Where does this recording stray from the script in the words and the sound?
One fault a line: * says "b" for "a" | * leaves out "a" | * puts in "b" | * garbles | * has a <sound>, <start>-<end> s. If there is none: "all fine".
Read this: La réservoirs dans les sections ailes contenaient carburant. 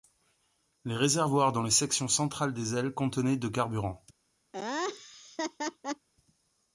* says "Les" for "La"
* puts in "centrales des"
* puts in "de"
* has a laugh, 4.5-6.1 s